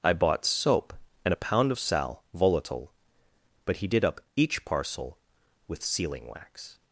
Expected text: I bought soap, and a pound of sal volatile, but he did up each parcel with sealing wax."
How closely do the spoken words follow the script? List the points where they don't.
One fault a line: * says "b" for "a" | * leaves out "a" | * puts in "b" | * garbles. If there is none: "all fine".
all fine